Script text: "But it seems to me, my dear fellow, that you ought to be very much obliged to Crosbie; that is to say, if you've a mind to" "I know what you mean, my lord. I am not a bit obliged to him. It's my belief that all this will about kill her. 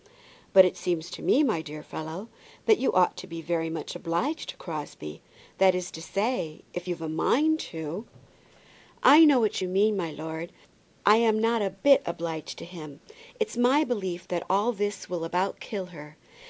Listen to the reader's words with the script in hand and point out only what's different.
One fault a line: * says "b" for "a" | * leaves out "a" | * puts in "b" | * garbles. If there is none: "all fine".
all fine